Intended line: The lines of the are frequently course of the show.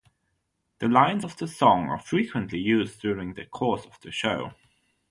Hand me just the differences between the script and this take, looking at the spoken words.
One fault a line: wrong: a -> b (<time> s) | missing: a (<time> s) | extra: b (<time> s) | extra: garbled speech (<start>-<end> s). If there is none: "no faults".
extra: song (1.5 s)
extra: used during the (2.6 s)